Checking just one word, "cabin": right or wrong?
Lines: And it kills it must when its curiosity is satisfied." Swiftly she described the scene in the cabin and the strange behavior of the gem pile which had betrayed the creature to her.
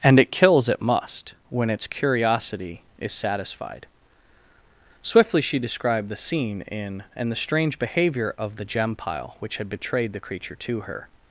wrong